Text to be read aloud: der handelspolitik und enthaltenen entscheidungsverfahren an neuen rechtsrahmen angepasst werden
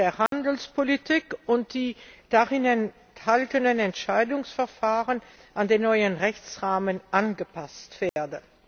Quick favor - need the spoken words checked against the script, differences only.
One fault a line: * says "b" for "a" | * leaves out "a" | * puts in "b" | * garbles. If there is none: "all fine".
* puts in "die darin"
* puts in "den"